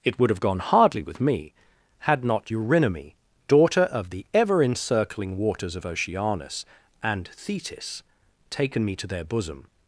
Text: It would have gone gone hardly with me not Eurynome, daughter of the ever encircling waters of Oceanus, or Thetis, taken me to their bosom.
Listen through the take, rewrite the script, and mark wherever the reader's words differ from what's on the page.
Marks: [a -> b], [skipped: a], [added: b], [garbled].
It would have gone [skipped: gone] hardly with me [added: had] not Eurynome, daughter of the ever encircling waters of Oceanus, [or -> and] Thetis, taken me to their bosom.